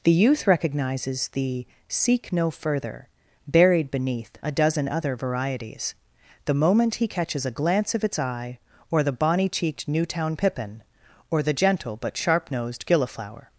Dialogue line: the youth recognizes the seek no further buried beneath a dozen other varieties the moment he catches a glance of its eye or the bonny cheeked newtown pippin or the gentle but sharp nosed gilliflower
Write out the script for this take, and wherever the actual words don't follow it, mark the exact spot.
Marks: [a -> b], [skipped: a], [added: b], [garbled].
the youth recognizes the seek no further buried beneath a dozen other varieties the moment he catches a glance of its eye or the bonny cheeked newtown pippin or the gentle but sharp nosed gilliflower